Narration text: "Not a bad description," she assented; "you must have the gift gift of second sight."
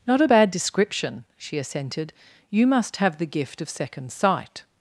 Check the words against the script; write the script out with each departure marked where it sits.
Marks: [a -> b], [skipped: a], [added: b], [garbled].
"Not a bad description," she assented; "you must have the gift [skipped: gift] of second sight."